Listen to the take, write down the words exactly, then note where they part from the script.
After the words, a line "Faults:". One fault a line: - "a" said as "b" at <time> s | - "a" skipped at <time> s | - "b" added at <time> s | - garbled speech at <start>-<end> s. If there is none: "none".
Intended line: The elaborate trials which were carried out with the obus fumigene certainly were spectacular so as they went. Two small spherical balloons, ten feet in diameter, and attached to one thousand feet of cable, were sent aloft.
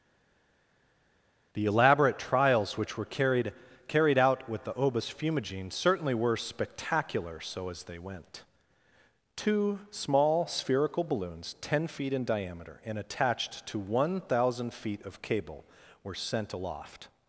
The elaborate trials which were carried carried out with the obus fumigene certainly were spectacular so as they went. Two small spherical balloons, ten feet in diameter, and attached to one thousand feet of cable, were sent aloft.
Faults:
- "carried" added at 3.9 s